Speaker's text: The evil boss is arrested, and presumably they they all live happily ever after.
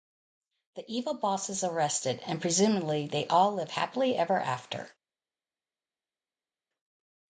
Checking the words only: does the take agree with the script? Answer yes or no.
no